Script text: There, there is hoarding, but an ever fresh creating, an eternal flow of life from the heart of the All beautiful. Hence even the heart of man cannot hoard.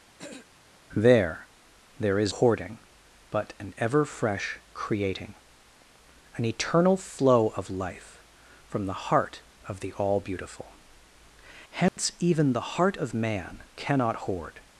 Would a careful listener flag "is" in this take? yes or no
no